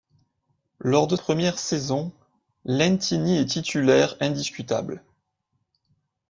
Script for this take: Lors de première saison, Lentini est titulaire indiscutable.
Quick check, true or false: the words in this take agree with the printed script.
true